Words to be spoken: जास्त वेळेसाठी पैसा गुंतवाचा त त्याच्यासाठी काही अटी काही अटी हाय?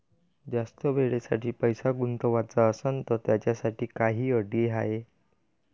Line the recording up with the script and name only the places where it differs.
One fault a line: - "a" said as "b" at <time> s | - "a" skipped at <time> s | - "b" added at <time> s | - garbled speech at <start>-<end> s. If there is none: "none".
- "असनं" added at 2.7 s
- "काही अटी" skipped at 4.7 s